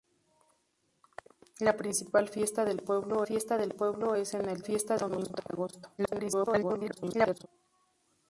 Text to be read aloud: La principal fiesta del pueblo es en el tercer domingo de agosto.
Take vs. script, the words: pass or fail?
fail